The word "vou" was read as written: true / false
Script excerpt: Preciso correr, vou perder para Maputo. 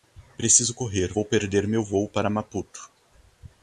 true